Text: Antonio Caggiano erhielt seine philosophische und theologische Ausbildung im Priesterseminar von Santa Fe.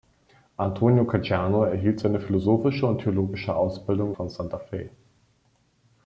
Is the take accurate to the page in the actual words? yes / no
no